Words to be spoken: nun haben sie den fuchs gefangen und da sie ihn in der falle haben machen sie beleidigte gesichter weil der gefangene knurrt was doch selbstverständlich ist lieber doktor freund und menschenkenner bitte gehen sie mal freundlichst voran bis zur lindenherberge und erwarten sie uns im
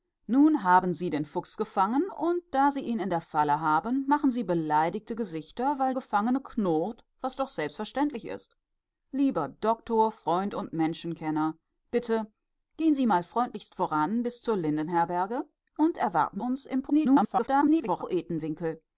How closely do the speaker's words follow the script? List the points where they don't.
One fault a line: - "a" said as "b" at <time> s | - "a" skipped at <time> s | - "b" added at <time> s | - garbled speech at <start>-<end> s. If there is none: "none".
- "der" skipped at 5.9 s
- "sie" skipped at 16.4 s
- garbled speech at 16.9-18.0 s